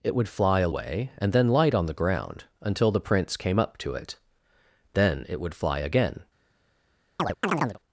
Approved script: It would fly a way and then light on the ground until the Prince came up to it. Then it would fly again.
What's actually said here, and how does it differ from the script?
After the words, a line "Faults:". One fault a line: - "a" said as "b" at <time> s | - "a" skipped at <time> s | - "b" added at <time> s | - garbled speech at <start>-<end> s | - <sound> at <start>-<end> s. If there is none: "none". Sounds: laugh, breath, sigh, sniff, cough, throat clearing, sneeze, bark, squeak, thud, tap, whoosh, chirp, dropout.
It would fly a way and then light on the ground until the Prince came up to it. Then it would fly again.
Faults:
- chirp at 7.2-7.8 s